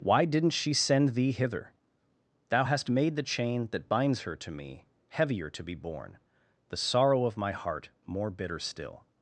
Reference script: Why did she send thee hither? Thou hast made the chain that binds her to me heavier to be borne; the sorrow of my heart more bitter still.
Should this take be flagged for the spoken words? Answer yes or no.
yes